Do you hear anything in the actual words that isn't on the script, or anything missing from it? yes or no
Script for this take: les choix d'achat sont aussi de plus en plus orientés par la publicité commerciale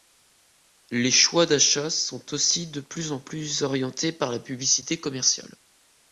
no